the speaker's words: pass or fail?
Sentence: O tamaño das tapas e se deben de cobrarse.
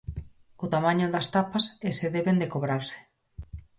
pass